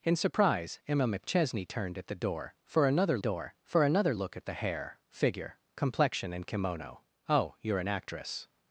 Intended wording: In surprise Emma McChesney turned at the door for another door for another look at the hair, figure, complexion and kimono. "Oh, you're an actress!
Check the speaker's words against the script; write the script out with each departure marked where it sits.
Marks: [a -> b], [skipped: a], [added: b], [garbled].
In surprise Emma McChesney turned at the door for another door for another look at the hair, figure, complexion and kimono. "Oh, you're an actress!